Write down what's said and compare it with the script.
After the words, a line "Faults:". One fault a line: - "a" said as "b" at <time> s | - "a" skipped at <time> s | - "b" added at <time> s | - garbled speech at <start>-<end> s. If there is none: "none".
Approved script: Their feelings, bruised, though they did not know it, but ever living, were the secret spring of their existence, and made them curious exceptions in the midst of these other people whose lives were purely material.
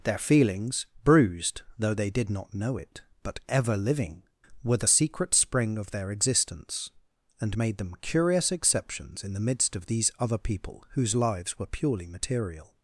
Their feelings, bruised, though they did not know it, but ever living, were the secret spring of their existence, and made them curious exceptions in the midst of these other people whose lives were purely material.
Faults:
none